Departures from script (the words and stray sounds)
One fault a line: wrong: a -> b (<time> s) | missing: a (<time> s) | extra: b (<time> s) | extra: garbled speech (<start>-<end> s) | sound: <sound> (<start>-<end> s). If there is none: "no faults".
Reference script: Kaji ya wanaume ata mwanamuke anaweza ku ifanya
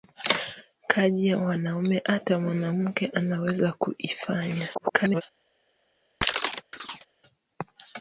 extra: garbled speech (4.7-5.2 s)
sound: chirp (6.2-7.1 s)